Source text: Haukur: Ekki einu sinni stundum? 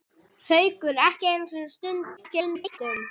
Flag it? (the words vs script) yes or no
yes